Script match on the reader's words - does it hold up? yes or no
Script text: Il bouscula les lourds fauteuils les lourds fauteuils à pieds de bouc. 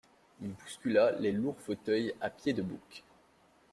no